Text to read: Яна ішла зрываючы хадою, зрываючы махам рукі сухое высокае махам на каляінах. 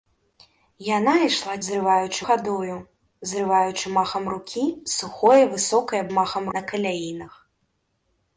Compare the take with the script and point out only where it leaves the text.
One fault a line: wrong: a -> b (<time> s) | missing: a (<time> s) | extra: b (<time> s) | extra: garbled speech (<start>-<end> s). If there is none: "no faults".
no faults